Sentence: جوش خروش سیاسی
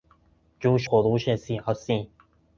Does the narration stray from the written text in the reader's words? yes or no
no